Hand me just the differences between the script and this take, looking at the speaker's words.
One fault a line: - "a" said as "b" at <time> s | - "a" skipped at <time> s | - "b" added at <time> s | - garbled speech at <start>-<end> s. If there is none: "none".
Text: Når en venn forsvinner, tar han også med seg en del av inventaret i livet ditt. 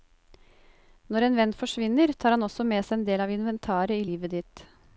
none